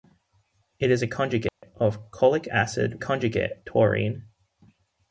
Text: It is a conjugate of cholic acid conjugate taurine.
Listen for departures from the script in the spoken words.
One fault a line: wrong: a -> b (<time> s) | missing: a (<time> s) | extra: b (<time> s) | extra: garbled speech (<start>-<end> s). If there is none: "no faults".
no faults